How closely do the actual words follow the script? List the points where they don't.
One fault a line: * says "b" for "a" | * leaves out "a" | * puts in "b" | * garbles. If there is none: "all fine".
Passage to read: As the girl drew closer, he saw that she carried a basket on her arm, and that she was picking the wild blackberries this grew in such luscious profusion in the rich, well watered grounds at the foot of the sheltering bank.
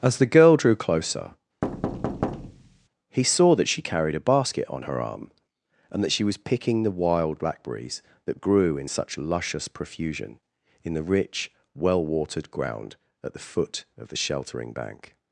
* says "that" for "this"
* says "ground" for "grounds"